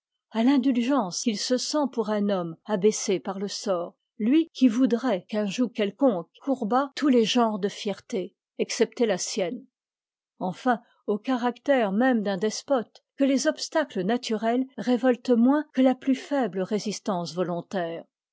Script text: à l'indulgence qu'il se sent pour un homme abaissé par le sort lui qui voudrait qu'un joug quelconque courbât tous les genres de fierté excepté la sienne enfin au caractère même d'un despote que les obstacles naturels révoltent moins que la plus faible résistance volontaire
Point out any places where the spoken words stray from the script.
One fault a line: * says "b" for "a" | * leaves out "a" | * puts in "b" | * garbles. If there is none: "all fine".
all fine